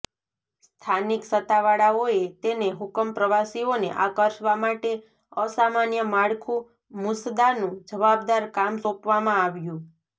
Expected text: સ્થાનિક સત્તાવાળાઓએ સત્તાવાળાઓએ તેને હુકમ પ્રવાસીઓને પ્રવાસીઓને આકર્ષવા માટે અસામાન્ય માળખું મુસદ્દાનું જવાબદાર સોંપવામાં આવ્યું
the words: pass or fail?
fail